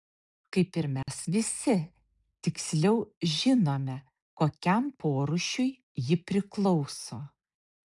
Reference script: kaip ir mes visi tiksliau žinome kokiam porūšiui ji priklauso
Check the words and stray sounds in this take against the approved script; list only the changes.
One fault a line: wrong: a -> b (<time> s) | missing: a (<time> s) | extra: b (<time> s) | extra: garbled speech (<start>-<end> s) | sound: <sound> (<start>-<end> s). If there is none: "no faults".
sound: dropout (1.0-1.1 s)